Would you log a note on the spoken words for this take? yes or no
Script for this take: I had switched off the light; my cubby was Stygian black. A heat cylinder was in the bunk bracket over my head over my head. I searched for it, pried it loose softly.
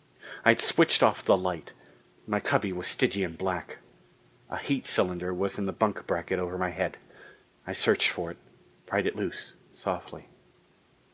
yes